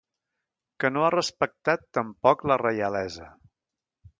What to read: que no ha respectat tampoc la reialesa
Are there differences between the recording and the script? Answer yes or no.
no